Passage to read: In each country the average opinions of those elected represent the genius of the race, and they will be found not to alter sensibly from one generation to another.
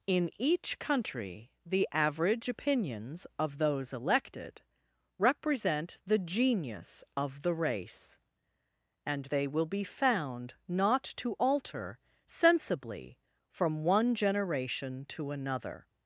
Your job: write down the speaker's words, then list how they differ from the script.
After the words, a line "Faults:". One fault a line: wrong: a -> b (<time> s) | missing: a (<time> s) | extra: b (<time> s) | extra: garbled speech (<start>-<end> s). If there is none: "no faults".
In each country the average opinions of those elected represent the genius of the race, and they will be found not to alter sensibly from one generation to another.
Faults:
no faults